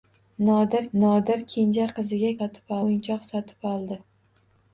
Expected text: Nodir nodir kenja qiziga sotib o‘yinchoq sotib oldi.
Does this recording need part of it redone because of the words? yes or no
no